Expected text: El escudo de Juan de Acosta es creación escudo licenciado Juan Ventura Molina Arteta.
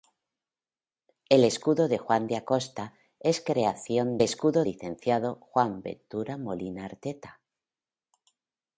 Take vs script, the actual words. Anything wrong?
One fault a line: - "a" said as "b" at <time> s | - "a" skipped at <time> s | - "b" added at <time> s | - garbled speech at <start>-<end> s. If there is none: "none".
none